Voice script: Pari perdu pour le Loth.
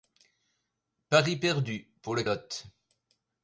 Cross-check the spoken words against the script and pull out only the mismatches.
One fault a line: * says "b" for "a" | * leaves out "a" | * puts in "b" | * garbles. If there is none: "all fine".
all fine